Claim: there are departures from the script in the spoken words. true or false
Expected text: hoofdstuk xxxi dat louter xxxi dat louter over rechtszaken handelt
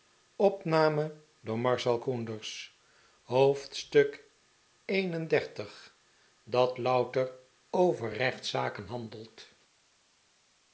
true